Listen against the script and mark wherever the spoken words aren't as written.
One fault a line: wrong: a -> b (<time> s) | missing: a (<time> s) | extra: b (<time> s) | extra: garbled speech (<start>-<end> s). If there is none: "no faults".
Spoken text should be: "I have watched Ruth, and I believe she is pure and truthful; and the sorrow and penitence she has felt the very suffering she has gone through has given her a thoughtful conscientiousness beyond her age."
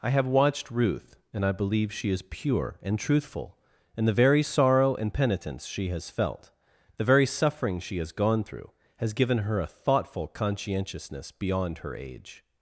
extra: very (4.1 s)